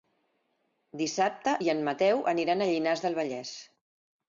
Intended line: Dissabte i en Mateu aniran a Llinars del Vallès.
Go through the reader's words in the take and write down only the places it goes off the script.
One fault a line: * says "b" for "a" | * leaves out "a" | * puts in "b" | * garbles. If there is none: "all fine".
all fine